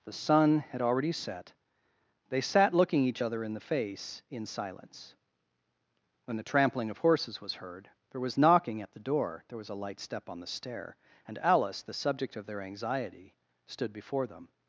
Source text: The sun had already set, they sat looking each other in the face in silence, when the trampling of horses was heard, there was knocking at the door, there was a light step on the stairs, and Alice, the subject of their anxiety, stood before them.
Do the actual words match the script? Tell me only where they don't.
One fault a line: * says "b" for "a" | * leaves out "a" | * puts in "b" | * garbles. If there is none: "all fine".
* says "stair" for "stairs"